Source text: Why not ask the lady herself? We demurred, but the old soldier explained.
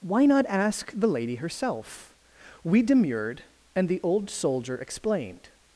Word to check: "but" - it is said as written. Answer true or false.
false